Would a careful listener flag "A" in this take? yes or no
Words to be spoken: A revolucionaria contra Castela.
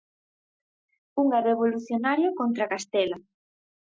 yes